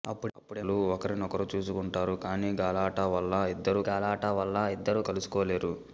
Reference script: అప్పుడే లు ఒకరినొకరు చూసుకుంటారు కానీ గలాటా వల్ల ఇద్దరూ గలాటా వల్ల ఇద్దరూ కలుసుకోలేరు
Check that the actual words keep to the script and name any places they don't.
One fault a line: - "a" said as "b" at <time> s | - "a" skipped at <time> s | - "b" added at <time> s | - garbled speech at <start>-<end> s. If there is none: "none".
none